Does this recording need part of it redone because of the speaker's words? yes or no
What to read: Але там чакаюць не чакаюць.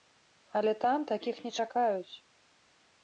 yes